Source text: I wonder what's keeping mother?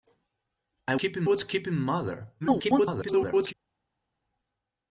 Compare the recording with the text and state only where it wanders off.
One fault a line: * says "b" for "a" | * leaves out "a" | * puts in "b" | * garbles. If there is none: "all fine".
* says "keeping" for "wonder"
* garbles